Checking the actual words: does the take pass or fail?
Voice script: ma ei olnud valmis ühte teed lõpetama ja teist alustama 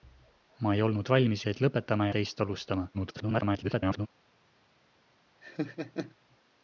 fail